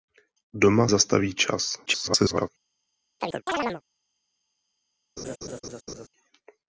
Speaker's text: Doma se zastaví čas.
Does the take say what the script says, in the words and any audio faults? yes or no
no